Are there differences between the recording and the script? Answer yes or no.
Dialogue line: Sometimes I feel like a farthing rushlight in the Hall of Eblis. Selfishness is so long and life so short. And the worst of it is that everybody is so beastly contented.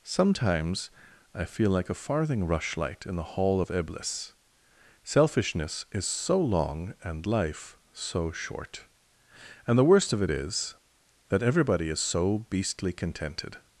no